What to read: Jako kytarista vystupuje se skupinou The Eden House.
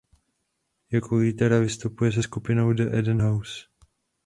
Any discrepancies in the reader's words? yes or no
no